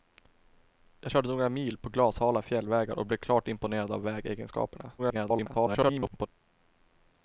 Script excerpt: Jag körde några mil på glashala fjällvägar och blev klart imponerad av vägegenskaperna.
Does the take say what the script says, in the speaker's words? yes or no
no